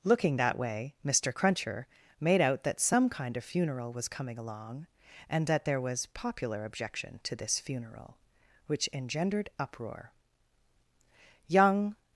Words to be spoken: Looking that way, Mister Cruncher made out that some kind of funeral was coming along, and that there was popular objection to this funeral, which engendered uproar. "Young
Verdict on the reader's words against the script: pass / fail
pass